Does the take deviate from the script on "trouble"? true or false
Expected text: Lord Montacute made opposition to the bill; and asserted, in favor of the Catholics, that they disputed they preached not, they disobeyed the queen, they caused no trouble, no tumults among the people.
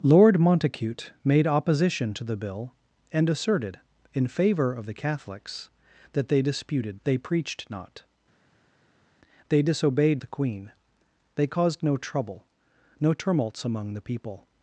false